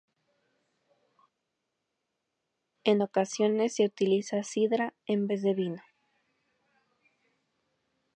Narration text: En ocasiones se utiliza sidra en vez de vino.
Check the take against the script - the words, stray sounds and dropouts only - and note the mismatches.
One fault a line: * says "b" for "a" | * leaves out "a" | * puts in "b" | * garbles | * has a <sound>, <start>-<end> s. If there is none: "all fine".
all fine